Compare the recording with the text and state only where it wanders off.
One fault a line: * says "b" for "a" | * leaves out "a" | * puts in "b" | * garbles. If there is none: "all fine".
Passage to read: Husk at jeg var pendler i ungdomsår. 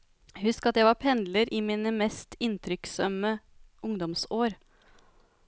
* puts in "mine mest inntrykksømme"